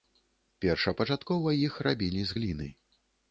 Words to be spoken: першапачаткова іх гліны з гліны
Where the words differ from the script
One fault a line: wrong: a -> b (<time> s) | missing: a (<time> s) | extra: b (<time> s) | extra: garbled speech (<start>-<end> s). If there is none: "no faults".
wrong: гліны -> рабілі (1.9 s)